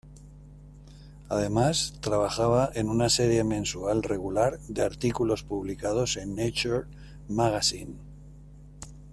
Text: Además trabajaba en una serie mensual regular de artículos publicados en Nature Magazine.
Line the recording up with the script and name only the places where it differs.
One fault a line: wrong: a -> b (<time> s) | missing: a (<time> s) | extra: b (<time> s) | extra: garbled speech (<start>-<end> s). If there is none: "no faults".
no faults